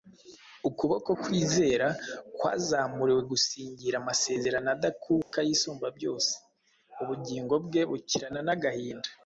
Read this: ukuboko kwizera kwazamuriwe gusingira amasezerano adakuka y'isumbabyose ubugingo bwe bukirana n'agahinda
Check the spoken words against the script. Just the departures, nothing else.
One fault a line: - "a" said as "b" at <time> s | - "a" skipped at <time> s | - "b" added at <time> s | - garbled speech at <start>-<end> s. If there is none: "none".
none